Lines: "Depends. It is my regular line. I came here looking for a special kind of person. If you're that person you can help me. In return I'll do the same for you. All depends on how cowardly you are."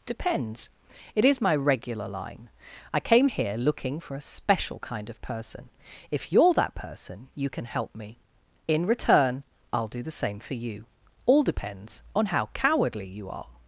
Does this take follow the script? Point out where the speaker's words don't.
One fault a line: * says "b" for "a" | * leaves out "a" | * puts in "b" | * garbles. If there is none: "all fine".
all fine